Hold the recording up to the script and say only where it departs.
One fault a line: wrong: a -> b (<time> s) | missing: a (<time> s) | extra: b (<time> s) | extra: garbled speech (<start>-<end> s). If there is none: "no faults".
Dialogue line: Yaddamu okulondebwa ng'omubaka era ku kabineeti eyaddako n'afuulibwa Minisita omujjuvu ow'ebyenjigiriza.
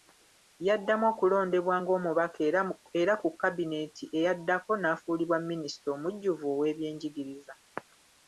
no faults